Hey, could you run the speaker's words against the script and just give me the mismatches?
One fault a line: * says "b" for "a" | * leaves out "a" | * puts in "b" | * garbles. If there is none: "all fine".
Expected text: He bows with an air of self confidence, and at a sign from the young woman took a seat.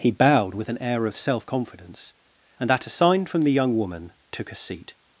* says "bowed" for "bows"